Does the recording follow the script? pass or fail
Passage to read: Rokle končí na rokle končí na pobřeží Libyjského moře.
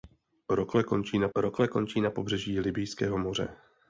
pass